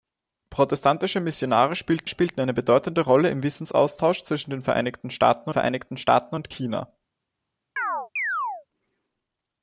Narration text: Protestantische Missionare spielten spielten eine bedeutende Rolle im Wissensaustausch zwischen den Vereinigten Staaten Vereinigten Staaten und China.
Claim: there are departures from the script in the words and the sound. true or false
true